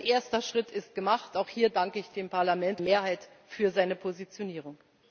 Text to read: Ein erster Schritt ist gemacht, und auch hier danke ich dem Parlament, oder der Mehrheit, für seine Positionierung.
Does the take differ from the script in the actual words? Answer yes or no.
yes